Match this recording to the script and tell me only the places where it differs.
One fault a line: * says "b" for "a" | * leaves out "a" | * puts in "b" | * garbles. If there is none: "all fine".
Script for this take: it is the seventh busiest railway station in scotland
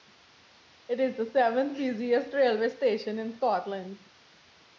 all fine